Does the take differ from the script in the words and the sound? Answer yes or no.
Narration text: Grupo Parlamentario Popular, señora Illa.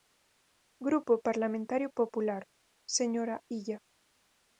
no